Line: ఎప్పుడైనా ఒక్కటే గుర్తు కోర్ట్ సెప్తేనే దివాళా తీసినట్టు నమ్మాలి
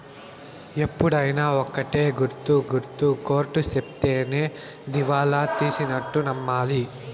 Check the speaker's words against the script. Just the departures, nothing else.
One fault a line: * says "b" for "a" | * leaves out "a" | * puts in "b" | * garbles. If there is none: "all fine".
* puts in "గుర్తు"